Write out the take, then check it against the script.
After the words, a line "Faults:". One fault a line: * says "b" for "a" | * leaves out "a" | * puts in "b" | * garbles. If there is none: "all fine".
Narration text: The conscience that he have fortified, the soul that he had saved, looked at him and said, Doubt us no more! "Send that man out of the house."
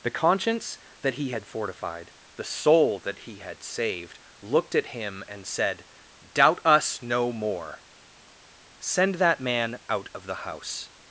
The conscience that he had fortified, the soul that he had saved, looked at him and said, Doubt us no more! "Send that man out of the house."
Faults:
* says "had" for "have"